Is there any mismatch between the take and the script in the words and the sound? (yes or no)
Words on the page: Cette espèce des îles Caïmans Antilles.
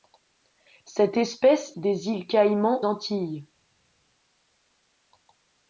no